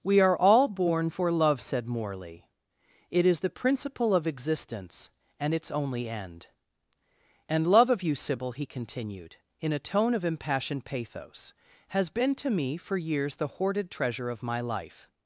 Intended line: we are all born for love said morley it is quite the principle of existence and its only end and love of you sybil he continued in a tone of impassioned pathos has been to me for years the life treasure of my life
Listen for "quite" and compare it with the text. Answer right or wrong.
wrong